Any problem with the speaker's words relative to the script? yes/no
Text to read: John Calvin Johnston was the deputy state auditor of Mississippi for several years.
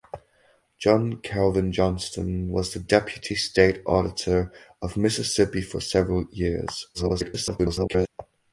yes